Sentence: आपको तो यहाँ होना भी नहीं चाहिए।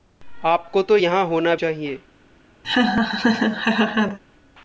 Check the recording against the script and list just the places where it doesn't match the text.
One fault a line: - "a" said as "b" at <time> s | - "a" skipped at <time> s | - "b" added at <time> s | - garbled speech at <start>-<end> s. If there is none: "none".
- "भी नहीं" skipped at 1.6 s